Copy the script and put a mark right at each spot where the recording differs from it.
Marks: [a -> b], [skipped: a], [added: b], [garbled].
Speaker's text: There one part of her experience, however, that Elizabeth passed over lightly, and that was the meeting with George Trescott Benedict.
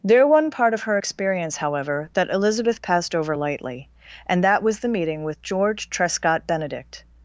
There one part of her experience, however, that Elizabeth passed over lightly, and that was the meeting with George Trescott Benedict.